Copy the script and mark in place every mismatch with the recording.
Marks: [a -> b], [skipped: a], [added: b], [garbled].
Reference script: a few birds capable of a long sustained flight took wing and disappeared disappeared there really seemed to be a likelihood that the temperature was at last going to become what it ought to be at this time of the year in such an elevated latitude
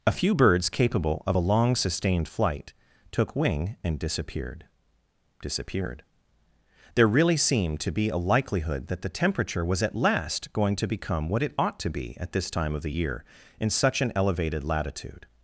a few birds capable of a long sustained flight took wing and disappeared disappeared there really seemed to be a likelihood that the temperature was at last going to become what it ought to be at this time of the year in such an elevated latitude